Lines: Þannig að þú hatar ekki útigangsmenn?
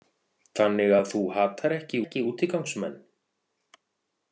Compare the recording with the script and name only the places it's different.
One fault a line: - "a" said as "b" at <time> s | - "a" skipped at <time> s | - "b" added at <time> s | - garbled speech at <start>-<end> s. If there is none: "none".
- "ekki" added at 2.0 s